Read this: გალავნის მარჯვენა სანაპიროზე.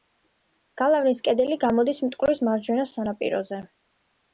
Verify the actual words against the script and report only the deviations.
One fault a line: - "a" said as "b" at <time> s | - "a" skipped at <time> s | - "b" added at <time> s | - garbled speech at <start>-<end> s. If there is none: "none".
- "კედელი გამოდის მტკვრის" added at 1.3 s